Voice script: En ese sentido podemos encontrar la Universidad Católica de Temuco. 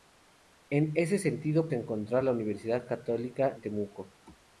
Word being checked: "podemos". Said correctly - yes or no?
no